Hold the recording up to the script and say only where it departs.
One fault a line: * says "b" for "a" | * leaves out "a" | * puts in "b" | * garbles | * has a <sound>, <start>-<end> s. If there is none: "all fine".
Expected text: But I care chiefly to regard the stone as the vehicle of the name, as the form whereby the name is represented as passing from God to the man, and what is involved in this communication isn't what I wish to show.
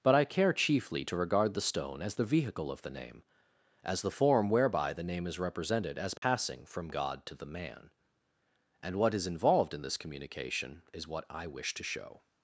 * has a dropout, 6.2-6.2 s
* says "is" for "isn't"